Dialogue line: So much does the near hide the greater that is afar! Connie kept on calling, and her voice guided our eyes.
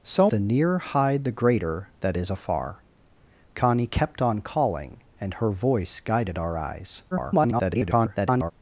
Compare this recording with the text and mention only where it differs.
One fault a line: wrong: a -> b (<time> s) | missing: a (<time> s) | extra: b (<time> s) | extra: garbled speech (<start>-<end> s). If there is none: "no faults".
missing: much does (0.3 s)
extra: garbled speech (7.1-8.5 s)